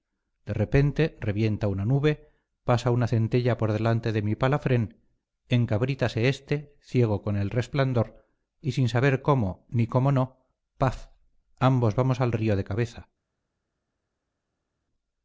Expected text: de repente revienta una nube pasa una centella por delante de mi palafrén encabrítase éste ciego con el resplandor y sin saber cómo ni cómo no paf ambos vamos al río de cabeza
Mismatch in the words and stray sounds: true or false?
false